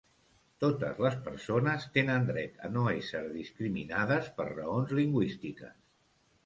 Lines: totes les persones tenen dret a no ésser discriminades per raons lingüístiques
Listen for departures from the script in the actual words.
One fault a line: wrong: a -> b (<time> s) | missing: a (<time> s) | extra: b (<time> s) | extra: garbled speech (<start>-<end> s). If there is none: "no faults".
no faults